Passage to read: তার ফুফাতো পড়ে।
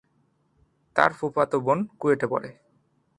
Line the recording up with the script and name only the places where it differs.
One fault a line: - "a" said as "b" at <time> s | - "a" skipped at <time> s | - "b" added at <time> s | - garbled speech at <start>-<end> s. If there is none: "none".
- "বোন কুয়েটে" added at 1.6 s